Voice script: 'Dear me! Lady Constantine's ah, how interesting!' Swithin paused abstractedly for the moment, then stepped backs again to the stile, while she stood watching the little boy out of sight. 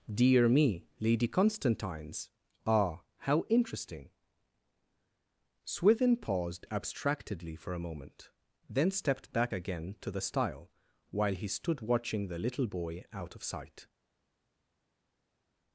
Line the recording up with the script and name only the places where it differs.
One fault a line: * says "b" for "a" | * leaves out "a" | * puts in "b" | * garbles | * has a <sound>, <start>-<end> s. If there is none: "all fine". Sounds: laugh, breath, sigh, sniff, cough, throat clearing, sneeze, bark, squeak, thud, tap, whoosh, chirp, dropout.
* says "a" for "the"
* says "back" for "backs"
* says "he" for "she"